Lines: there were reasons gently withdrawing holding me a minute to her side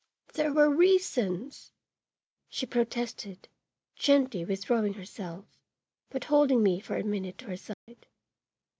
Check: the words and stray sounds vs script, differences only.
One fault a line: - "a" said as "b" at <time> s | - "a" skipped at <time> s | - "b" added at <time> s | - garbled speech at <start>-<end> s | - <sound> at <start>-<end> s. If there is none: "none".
- "she protested" added at 2.5 s
- "herself but" added at 4.9 s
- "for" added at 6.8 s
- dropout at 7.7-7.9 s